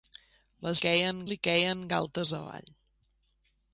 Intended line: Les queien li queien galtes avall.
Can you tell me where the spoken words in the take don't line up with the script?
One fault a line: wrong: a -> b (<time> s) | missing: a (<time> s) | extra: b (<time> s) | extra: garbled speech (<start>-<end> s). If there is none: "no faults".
no faults